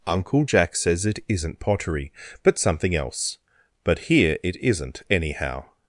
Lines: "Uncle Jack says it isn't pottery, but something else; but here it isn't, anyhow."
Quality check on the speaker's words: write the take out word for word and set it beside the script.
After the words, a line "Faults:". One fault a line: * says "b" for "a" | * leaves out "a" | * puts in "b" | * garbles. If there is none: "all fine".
"Uncle Jack says it isn't pottery, but something else; but here it isn't, anyhow."
Faults:
all fine